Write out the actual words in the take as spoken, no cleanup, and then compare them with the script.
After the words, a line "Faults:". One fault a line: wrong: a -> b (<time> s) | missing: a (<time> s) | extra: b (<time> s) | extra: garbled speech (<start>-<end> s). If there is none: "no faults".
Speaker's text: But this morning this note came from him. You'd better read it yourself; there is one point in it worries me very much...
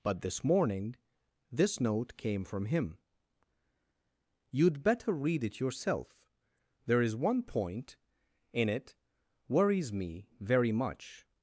But this morning this note came from him. You'd better read it yourself; there is one point in it worries me very much...
Faults:
no faults